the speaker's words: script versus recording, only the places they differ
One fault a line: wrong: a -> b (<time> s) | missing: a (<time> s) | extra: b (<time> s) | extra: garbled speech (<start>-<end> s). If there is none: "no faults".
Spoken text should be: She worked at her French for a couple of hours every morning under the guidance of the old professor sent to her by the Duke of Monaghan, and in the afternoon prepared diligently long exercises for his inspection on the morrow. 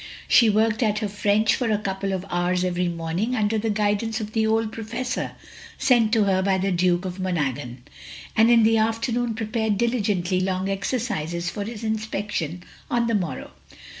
no faults